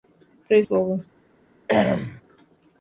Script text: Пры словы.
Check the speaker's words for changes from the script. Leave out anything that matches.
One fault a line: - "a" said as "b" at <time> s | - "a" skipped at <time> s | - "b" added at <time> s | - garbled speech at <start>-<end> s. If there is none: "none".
none